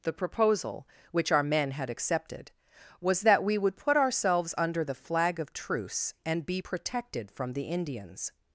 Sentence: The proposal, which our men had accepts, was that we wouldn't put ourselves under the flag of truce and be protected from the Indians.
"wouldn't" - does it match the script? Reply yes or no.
no